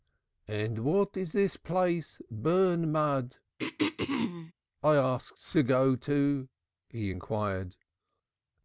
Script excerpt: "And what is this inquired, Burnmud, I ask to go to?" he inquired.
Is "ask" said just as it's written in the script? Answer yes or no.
yes